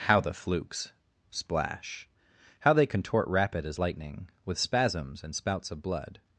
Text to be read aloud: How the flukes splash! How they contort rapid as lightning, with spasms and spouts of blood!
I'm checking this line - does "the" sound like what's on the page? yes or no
yes